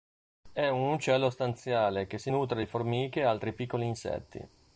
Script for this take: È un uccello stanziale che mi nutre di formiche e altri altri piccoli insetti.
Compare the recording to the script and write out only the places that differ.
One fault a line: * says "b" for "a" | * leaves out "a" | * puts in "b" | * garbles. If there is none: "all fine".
* says "si" for "mi"
* leaves out "altri"